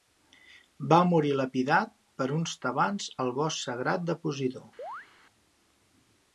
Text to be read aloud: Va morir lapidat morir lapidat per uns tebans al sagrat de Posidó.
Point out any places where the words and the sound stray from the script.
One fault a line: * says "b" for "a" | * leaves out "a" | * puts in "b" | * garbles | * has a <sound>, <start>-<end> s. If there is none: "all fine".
* leaves out "morir lapidat"
* puts in "bosc"
* has a chirp, 4.8-5.1 s